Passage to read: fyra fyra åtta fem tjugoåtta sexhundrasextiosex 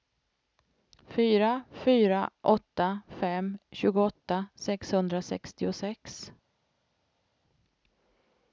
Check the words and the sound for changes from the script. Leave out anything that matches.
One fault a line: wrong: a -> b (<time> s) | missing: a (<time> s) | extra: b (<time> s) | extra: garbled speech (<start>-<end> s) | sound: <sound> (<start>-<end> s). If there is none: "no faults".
no faults